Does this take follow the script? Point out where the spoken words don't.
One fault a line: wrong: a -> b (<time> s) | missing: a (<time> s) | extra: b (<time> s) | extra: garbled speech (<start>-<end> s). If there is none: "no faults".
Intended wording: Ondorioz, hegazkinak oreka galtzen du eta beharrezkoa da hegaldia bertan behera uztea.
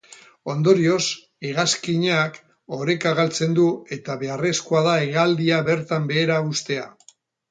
no faults